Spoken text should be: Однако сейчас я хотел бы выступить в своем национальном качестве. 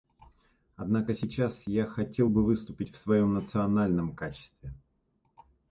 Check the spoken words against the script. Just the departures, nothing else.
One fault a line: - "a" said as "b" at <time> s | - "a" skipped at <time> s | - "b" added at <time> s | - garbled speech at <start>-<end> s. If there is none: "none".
none